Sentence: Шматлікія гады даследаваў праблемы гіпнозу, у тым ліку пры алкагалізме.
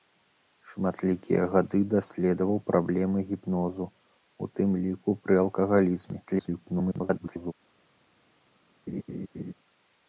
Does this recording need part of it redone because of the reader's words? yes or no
yes